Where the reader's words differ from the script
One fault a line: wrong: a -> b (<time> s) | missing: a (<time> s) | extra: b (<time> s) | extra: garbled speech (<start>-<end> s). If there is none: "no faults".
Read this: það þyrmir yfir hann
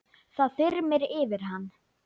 no faults